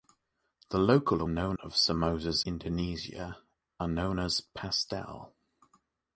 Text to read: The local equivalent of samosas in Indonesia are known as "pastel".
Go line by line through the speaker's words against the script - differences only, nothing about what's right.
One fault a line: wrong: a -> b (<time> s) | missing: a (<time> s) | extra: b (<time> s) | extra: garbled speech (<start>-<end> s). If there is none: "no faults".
wrong: equivalent -> known (1.3 s)
missing: in (2.4 s)